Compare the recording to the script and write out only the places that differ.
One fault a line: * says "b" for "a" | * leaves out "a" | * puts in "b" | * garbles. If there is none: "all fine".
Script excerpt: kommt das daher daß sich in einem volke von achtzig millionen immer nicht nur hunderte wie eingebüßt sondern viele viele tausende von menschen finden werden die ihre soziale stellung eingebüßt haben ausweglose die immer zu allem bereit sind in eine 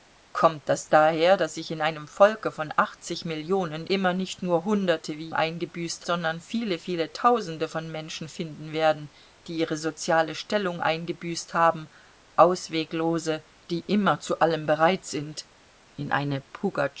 all fine